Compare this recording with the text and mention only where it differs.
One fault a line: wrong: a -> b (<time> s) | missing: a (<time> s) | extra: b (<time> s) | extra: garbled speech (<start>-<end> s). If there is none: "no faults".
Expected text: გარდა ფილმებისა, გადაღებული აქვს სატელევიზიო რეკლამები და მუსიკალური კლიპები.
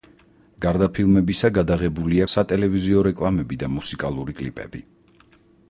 missing: აქვს (2.2 s)